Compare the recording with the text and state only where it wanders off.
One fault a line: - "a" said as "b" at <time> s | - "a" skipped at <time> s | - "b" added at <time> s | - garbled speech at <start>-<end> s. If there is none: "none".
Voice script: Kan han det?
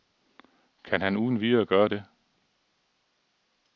- "uden videre gøre" added at 1.2 s